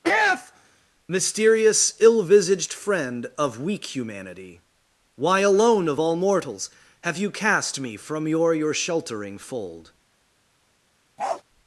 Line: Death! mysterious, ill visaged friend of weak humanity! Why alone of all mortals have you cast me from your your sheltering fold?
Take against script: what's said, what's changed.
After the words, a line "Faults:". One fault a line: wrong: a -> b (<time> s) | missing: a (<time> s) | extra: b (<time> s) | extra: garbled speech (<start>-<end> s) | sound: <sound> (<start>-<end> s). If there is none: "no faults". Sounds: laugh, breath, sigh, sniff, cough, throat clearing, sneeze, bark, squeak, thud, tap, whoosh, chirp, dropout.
Death! mysterious, ill visaged friend of weak humanity! Why alone of all mortals have you cast me from your your sheltering fold?
Faults:
sound: bark (11.2-11.4 s)